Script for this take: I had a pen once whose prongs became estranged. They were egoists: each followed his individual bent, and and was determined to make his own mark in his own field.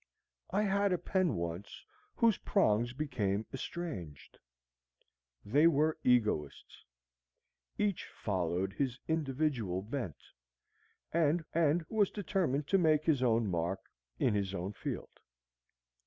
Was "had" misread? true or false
false